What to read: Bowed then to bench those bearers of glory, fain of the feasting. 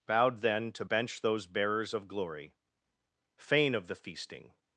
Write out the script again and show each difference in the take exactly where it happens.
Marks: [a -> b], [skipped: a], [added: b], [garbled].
Bowed then to bench those bearers of glory, fain of the feasting.